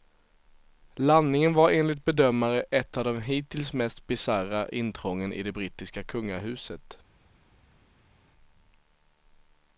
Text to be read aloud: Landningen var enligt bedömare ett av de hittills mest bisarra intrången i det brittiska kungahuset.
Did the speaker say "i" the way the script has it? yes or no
yes